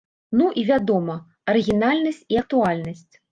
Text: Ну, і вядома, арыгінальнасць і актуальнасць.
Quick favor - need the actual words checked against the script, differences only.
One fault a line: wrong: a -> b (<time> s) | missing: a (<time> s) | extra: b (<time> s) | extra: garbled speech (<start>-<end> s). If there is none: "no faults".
no faults